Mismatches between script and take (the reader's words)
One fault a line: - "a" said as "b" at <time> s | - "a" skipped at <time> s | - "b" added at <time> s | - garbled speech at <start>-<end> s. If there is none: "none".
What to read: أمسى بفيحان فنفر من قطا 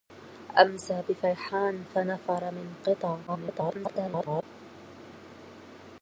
- garbled speech at 3.3-4.4 s